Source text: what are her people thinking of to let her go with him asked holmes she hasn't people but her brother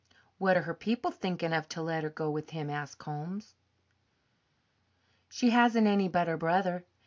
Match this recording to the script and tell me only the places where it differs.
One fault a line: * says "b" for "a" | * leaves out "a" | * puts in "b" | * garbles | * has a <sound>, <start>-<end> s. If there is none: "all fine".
* says "any" for "people"